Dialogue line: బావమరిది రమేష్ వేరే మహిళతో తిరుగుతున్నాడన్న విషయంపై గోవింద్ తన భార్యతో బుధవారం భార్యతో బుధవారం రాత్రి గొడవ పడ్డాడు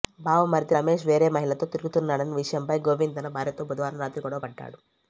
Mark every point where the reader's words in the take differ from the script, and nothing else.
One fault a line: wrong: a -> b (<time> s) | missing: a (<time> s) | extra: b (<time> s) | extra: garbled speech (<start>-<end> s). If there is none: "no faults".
missing: భార్యతో బుధవారం (4.0 s)